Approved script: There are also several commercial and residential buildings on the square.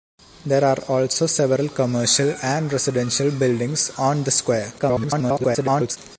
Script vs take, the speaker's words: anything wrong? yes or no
yes